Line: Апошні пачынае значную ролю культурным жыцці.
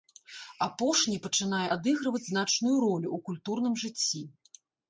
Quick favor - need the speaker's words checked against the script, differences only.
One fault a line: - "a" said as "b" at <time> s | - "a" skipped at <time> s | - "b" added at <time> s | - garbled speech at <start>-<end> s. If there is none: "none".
- "адыгрываць" added at 1.8 s
- "ў" added at 3.2 s